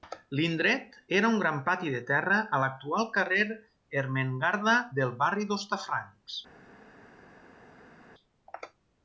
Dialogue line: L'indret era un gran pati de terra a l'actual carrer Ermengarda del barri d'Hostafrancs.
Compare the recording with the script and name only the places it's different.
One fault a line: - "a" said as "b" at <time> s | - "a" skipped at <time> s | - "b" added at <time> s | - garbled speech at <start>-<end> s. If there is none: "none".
none